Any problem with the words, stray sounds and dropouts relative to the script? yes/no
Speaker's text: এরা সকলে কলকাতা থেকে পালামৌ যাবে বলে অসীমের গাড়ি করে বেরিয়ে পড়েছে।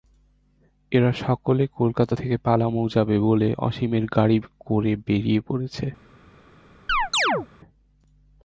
yes